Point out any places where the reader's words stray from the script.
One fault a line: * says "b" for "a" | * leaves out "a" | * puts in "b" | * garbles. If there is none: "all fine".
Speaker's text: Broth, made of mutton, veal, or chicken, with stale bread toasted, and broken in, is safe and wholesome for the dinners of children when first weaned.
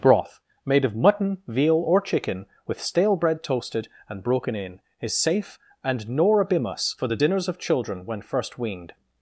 * says "norabimus" for "wholesome"